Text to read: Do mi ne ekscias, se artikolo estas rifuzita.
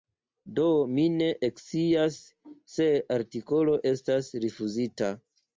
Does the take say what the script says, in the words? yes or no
yes